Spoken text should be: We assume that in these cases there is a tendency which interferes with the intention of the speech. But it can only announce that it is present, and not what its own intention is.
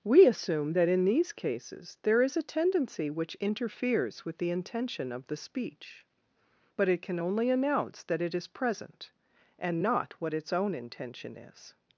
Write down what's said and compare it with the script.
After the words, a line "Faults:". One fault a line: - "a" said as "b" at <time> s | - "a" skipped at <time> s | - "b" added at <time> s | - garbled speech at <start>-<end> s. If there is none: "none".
We assume that in these cases there is a tendency which interferes with the intention of the speech. But it can only announce that it is present, and not what its own intention is.
Faults:
none